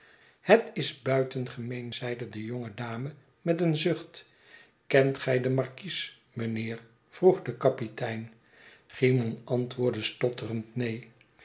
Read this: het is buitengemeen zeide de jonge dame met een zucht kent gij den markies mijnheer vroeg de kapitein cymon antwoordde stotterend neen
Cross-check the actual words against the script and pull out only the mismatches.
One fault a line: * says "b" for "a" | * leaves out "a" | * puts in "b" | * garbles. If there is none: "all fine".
all fine